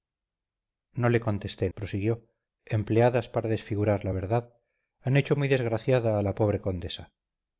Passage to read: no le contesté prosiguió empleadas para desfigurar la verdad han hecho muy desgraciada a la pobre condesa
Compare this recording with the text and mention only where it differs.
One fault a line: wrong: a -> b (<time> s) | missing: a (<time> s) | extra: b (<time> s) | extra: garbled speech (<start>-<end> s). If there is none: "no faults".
no faults